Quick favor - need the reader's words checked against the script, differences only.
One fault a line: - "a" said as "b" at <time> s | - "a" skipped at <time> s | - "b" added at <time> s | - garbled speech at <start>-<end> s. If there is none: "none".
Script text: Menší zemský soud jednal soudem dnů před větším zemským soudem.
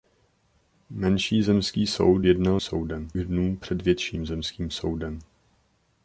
none